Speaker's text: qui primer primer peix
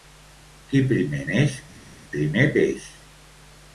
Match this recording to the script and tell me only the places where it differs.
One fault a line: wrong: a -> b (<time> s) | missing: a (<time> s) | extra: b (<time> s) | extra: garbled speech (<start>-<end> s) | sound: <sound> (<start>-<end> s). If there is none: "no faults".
extra: neix (1.3 s)